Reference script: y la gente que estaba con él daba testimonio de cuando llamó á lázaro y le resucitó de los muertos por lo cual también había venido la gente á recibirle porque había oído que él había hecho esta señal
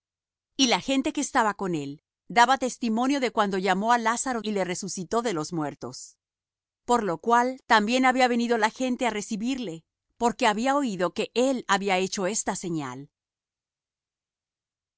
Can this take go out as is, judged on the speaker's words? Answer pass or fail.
pass